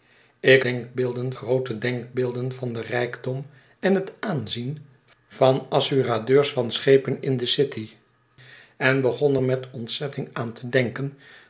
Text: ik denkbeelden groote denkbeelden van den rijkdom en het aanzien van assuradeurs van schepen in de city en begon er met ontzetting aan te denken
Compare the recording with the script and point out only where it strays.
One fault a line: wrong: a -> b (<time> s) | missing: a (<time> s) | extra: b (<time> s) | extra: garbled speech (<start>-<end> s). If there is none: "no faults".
no faults